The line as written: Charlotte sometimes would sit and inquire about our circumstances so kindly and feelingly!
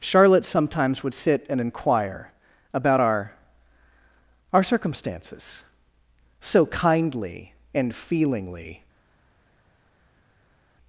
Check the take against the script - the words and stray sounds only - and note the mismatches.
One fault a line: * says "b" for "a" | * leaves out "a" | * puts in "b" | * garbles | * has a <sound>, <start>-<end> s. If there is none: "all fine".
* puts in "our"